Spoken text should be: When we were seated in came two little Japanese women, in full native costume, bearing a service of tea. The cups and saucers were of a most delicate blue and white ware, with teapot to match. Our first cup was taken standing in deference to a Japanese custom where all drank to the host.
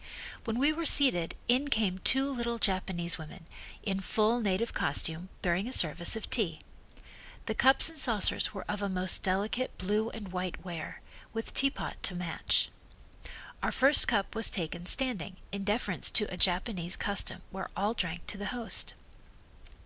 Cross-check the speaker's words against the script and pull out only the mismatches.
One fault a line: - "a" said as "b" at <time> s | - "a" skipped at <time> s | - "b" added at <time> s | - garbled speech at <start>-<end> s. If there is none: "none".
none